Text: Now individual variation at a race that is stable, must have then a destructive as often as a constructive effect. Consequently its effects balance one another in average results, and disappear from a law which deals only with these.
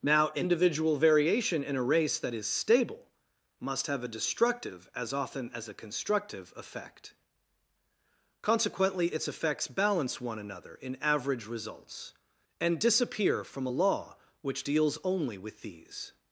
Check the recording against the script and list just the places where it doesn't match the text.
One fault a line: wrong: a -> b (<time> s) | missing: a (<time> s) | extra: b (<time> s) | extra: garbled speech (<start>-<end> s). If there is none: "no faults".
wrong: at -> in (1.6 s)
missing: then (4.0 s)